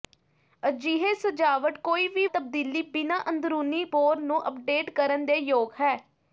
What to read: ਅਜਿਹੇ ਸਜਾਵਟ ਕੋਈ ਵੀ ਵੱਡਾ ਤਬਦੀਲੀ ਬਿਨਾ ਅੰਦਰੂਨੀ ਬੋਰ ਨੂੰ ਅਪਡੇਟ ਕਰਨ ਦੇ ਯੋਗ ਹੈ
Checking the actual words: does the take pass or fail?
fail